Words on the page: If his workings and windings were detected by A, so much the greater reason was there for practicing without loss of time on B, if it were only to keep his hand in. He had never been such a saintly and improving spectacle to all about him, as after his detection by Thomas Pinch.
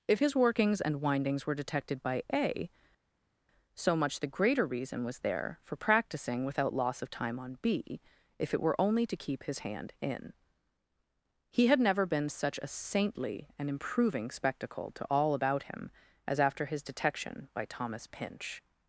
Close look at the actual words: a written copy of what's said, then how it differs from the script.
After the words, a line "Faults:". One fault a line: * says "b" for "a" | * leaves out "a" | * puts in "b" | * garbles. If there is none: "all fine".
If his workings and windings were detected by A, so much the greater reason was there for practicing without loss of time on B, if it were only to keep his hand in. He had never been such a saintly and improving spectacle to all about him, as after his detection by Thomas Pinch.
Faults:
all fine